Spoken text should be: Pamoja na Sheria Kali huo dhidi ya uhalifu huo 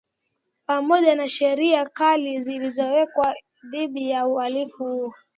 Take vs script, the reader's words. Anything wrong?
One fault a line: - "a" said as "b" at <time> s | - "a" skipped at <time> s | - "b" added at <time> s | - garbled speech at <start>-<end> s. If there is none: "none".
- "huo" said as "zilizowekwa" at 2.4 s